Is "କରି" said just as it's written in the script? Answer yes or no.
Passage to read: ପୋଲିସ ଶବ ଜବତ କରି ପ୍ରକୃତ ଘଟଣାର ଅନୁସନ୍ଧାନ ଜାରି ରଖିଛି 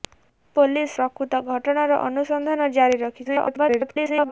no